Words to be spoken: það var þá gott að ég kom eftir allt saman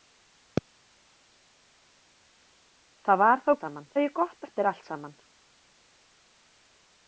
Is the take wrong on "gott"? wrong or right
wrong